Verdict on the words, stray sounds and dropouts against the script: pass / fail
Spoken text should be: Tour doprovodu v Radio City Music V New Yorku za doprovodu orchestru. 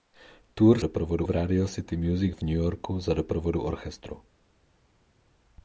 pass